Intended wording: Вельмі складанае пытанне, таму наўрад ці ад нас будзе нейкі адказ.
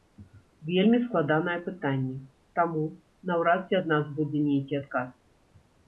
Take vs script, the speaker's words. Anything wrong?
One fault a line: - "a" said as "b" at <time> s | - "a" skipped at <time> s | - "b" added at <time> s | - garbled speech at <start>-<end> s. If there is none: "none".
none